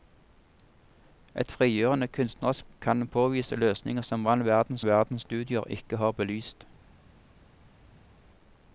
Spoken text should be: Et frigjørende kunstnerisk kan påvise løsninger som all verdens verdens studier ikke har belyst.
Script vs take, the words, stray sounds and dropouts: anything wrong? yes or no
no